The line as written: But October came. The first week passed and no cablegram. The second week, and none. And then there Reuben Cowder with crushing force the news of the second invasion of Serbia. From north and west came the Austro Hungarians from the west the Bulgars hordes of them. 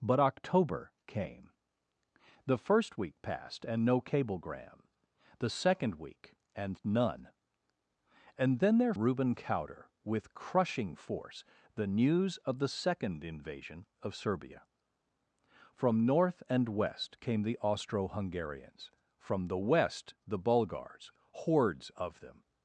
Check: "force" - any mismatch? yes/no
no